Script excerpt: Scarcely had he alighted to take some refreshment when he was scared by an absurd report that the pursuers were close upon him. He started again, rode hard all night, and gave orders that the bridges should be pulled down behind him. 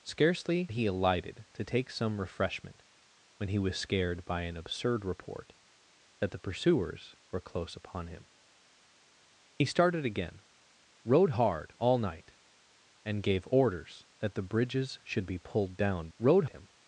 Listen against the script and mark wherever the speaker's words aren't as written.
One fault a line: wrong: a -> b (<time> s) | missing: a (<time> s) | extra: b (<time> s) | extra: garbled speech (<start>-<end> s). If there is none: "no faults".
missing: had (0.7 s)
wrong: behind -> rode (16.2 s)